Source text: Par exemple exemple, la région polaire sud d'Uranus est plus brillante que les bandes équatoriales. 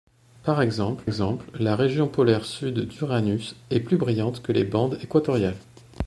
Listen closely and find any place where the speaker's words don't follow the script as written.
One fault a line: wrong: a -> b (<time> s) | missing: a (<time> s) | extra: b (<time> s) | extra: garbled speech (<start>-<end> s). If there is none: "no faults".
no faults